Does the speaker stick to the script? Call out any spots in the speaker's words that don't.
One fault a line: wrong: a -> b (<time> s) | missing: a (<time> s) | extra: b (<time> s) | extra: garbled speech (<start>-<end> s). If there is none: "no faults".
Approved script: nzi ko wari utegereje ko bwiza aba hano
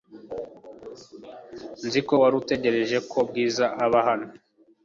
no faults